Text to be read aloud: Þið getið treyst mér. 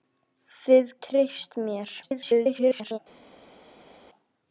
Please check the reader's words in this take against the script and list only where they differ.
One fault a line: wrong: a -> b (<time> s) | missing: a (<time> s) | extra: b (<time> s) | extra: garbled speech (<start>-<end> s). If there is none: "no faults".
missing: getið (0.9 s)
extra: garbled speech (2.0-3.0 s)